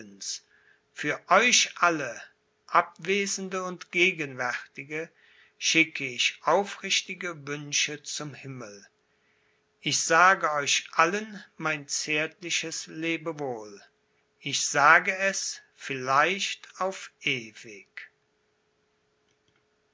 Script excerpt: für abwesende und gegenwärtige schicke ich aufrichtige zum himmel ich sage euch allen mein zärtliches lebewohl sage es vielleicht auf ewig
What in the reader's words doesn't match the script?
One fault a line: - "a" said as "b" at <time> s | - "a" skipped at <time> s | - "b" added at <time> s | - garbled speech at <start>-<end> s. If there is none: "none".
- "euch alle" added at 1.3 s
- "wünsche" added at 7.5 s
- "ich" added at 14.4 s